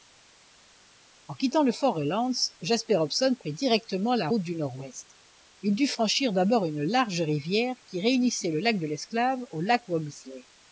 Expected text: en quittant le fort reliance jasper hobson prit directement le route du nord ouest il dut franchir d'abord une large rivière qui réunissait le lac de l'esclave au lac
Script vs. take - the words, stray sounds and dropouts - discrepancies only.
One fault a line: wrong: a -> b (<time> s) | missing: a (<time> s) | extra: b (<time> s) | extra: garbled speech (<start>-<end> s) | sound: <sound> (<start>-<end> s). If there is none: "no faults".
wrong: le -> la (4.1 s)